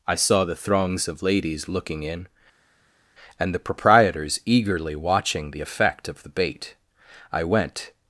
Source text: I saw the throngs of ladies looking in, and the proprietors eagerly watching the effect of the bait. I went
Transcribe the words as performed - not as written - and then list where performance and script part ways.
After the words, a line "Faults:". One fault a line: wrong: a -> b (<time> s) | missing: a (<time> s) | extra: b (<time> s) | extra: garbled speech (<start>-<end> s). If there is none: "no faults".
I saw the throngs of ladies looking in, and the proprietors eagerly watching the effect of the bait. I went
Faults:
no faults